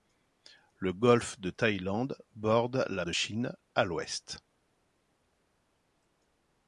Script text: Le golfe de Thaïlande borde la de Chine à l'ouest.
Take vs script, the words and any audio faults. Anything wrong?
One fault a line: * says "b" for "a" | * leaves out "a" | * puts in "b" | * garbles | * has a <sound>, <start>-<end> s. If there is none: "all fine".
all fine